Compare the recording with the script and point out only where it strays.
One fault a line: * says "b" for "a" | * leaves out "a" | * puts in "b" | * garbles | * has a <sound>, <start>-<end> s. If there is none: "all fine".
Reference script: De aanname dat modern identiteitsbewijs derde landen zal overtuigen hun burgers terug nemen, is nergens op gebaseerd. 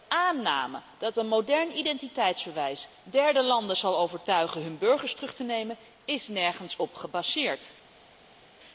* puts in "een"
* puts in "te"